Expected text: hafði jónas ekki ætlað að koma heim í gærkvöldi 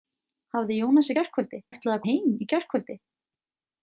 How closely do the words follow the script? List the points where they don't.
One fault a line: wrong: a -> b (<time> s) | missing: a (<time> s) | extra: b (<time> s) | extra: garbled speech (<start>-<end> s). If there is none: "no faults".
wrong: ekki -> gærkvöldi (1.2 s)
missing: koma (2.1 s)